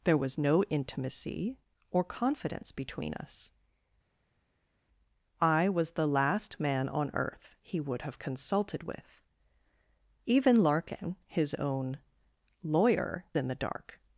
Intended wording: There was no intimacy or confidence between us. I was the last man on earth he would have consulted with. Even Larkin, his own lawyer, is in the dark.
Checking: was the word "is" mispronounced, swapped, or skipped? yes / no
yes